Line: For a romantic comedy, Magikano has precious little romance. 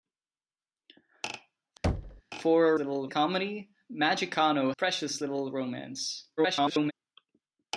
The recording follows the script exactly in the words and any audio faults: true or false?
false